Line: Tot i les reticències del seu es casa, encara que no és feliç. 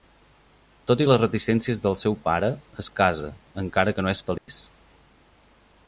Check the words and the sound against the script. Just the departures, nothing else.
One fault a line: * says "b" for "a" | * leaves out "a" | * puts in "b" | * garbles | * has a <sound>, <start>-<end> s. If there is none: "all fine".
* puts in "pare"
* has a dropout, 4.4-4.5 s